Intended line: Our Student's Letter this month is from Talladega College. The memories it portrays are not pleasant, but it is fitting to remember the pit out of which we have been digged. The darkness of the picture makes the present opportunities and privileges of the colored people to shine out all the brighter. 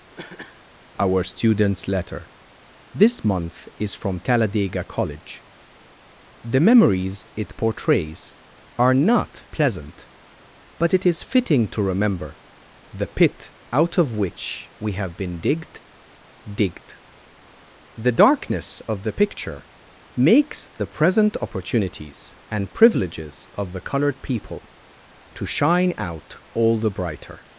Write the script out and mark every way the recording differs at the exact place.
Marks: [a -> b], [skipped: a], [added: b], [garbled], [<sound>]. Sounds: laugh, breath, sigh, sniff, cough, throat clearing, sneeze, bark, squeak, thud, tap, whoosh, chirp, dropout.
[cough] Our Student's Letter this month is from Talladega College. The memories it portrays are not pleasant, but it is fitting to remember the pit out of which we have been digged. [added: digged] The darkness of the picture makes the present opportunities and privileges of the colored people to shine out all the brighter.